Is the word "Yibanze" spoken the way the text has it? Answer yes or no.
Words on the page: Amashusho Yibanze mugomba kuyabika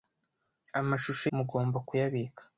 no